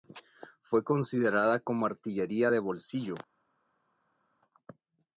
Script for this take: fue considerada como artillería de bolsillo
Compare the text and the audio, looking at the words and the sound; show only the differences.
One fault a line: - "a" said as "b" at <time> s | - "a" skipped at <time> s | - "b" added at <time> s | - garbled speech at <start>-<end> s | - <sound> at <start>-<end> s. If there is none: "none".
none